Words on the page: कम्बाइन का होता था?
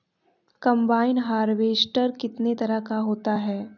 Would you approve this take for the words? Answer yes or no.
no